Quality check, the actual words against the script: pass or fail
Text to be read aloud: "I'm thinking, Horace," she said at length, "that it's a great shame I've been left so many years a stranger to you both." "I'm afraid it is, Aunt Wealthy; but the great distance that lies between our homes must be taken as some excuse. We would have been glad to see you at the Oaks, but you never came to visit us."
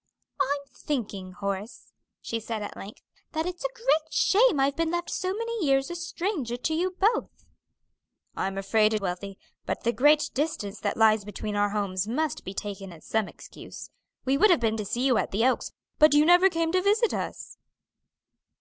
fail